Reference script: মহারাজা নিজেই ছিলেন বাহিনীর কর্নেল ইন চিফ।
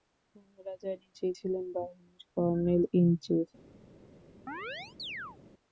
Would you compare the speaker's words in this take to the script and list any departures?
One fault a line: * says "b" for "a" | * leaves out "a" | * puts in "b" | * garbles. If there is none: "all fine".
all fine